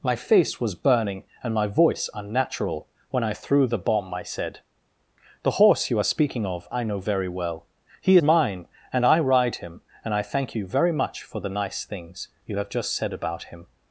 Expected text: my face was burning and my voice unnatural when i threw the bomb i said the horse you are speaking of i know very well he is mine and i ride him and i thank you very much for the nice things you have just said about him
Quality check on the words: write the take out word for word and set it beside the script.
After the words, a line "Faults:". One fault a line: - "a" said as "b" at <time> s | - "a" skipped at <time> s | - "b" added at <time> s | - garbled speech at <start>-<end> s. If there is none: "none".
my face was burning and my voice unnatural when i threw the bomb i said the horse you are speaking of i know very well he mine and i ride him and i thank you very much for the nice things you have just said about him
Faults:
- "is" skipped at 8.2 s